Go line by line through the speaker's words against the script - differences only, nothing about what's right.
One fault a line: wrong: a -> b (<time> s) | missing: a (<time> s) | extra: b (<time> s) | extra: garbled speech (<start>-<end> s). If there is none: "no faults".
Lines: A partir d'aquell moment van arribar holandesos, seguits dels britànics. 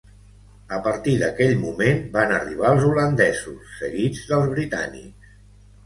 extra: els (2.7 s)